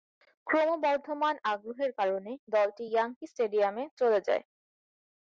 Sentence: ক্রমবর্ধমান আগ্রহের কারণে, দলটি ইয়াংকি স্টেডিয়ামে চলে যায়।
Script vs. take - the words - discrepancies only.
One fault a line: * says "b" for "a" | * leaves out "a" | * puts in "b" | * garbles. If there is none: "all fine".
all fine